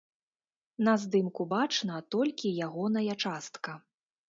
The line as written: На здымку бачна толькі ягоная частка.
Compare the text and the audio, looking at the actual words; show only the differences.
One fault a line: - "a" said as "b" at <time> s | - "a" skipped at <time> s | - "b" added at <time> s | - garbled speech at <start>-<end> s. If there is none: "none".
none